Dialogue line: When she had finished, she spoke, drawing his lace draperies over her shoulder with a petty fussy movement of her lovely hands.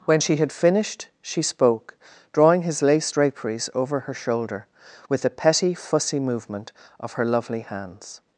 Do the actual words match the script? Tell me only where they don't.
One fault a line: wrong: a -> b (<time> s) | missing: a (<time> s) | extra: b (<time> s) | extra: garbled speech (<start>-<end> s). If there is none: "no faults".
no faults